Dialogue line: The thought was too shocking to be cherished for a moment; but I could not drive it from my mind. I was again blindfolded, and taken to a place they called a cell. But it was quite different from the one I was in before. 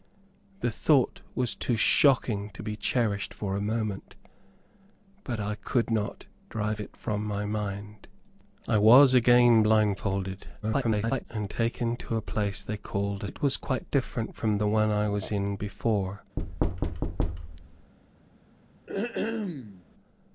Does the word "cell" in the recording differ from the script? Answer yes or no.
yes